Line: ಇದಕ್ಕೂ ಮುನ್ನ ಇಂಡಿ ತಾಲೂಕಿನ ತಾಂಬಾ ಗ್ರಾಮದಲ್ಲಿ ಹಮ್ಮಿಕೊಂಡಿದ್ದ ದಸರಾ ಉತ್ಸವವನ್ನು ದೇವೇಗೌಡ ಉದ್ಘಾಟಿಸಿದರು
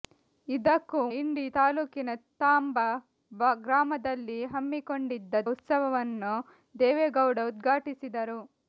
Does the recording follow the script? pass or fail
fail